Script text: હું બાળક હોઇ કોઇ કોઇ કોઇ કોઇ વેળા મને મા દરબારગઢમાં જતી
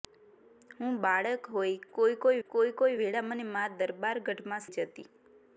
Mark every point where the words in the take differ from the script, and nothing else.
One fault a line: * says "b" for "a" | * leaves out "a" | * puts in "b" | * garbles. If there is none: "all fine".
all fine